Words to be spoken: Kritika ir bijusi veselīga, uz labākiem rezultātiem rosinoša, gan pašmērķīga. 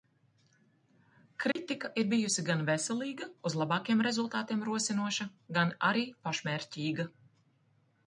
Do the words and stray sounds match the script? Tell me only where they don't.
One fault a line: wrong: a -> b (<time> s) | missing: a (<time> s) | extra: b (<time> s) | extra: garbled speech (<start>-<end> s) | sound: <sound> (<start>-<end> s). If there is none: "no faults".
sound: dropout (1.5-1.6 s)
extra: gan (2.5 s)
extra: arī (5.9 s)